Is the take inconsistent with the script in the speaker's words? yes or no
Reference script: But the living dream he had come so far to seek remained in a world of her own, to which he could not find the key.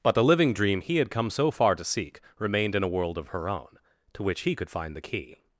yes